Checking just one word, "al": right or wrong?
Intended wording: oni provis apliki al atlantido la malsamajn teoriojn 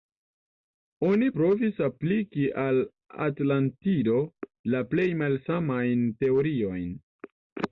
right